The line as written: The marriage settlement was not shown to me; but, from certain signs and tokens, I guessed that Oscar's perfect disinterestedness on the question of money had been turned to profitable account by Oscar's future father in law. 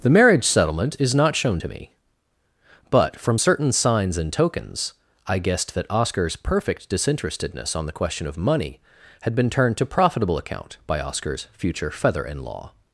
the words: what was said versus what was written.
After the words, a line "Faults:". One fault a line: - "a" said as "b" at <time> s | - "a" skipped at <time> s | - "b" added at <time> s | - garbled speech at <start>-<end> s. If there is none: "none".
The marriage settlement is not shown to me; but, from certain signs and tokens, I guessed that Oscar's perfect disinterestedness on the question of money had been turned to profitable account by Oscar's future feather in law.
Faults:
- "was" said as "is" at 1.0 s
- "father" said as "feather" at 11.9 s